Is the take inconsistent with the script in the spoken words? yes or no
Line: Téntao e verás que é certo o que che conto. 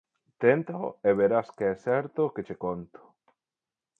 no